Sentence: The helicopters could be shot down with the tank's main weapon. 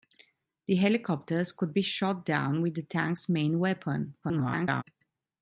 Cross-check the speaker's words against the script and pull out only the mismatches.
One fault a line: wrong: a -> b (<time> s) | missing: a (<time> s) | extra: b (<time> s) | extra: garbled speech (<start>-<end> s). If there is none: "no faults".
extra: garbled speech (4.2-4.8 s)